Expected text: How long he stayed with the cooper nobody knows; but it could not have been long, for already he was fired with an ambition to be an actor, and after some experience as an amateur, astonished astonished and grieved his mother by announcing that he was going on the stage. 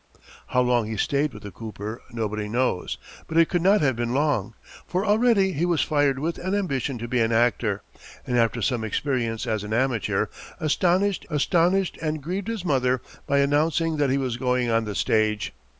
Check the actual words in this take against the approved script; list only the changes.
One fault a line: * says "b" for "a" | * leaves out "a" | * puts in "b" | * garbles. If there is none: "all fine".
all fine